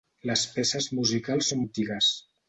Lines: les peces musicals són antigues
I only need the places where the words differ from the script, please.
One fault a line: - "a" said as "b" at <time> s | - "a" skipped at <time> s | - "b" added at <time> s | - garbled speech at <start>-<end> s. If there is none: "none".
none